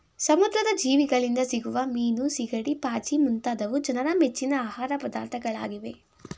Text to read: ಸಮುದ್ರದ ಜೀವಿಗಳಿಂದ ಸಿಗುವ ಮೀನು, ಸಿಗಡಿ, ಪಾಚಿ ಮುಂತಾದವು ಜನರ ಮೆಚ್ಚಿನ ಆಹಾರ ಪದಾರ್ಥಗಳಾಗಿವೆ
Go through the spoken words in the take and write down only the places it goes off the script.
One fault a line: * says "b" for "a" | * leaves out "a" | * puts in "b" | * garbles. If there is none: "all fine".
all fine